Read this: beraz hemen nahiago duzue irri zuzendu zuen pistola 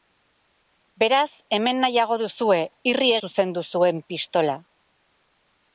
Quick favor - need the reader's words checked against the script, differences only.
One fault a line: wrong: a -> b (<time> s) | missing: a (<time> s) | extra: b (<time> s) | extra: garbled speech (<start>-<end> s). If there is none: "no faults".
no faults